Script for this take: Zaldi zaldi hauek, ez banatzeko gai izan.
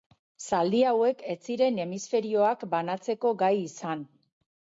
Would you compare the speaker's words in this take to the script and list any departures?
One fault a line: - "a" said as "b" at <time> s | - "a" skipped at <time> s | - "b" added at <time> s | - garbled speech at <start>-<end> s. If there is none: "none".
- "zaldi" skipped at 0.8 s
- "ziren hemisferioak" added at 1.5 s